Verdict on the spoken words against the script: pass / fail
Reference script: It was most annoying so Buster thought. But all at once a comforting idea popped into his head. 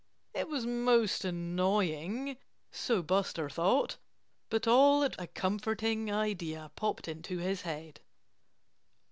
fail